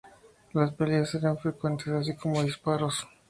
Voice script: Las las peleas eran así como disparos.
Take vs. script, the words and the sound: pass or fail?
fail